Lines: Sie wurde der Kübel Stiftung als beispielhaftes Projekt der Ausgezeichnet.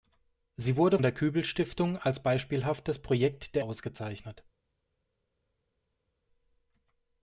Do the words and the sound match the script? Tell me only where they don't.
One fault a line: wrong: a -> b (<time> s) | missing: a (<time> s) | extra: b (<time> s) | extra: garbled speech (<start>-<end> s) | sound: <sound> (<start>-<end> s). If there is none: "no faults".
no faults